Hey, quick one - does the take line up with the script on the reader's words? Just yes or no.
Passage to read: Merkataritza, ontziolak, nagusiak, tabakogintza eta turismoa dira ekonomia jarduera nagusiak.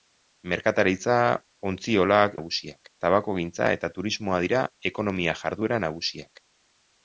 yes